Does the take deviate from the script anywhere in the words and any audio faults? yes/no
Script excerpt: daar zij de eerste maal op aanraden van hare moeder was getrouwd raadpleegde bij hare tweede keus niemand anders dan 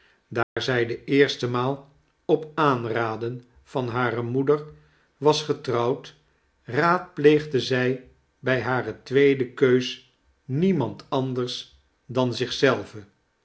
yes